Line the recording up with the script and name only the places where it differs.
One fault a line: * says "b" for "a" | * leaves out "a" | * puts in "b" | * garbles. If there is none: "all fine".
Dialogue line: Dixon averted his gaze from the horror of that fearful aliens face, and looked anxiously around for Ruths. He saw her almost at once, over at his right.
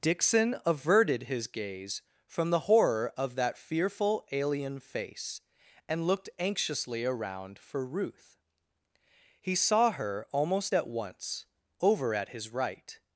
* says "alien" for "aliens"
* says "Ruth" for "Ruths"